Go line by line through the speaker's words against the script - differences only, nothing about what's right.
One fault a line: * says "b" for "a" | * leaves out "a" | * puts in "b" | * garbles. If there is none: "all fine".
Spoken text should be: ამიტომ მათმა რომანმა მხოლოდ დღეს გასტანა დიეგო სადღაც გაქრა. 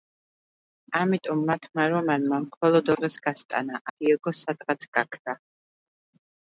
all fine